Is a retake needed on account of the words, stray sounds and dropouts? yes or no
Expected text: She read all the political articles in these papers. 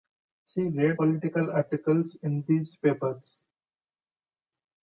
yes